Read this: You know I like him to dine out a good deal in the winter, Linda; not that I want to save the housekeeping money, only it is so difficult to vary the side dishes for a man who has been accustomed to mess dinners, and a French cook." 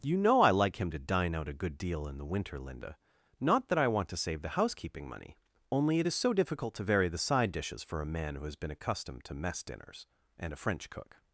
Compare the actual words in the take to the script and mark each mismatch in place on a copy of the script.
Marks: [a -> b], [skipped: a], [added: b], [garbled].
You know I like him to dine out a good deal in the winter, Linda; not that I want to save the housekeeping money, only it is so difficult to vary the side dishes for a man who has been accustomed to mess dinners, and a French cook."